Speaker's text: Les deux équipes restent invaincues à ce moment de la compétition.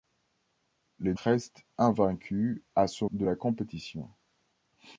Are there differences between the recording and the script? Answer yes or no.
yes